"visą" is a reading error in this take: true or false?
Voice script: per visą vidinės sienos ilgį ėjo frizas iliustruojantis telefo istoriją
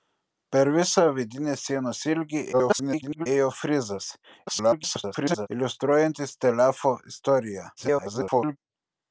false